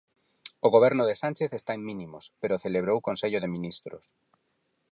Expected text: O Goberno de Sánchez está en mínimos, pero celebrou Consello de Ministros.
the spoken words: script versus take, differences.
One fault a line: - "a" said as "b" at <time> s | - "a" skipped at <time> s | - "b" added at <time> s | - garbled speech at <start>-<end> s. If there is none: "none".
none